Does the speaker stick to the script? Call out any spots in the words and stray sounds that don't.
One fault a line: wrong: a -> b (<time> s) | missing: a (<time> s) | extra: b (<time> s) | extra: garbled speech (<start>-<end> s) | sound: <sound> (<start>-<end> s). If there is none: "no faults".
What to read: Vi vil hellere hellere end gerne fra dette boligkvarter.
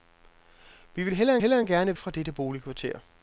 no faults